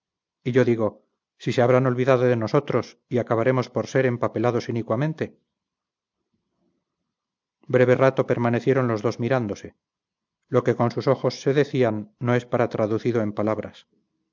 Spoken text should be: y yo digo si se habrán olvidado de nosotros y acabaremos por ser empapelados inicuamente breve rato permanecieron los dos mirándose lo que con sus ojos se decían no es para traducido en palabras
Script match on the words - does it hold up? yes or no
yes